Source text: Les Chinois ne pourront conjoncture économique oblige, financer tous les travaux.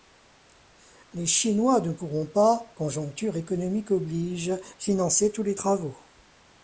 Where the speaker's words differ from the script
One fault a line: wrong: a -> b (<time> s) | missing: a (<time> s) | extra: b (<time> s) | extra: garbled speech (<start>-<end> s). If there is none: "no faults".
extra: pas (2.3 s)